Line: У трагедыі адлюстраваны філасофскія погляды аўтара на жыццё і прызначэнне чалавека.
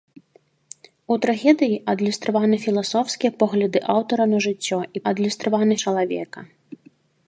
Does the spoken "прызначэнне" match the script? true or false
false